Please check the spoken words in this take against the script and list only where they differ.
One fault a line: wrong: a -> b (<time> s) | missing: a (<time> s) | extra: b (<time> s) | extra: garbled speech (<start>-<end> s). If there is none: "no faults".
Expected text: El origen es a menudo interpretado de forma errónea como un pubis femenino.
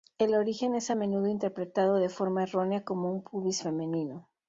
no faults